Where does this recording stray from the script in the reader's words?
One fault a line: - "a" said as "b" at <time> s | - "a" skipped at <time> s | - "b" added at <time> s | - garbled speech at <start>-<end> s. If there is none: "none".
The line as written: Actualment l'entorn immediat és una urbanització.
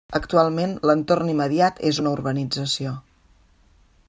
none